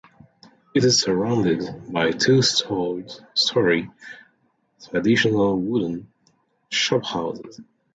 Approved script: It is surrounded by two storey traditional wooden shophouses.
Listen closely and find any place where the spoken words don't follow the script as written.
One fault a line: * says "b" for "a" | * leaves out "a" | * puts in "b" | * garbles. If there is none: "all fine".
all fine